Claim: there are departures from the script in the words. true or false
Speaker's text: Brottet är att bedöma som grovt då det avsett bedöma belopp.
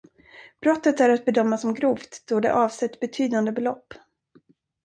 true